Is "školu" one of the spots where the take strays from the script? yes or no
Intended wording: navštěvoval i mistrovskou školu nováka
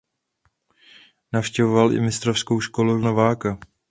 no